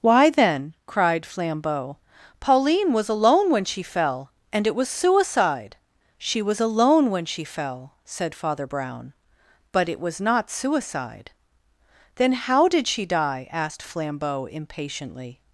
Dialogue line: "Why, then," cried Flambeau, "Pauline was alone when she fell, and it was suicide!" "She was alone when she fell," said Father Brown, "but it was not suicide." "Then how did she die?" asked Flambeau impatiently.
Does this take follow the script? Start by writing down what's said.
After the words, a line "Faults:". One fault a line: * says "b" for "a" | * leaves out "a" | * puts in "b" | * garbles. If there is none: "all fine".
"Why, then," cried Flambeau, "Pauline was alone when she fell, and it was suicide!" "She was alone when she fell," said Father Brown, "but it was not suicide." "Then how did she die?" asked Flambeau impatiently.
Faults:
all fine